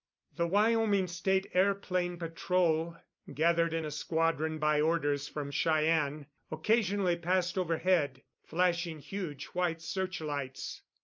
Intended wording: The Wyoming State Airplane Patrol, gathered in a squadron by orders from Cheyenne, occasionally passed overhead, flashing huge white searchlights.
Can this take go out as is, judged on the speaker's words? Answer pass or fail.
pass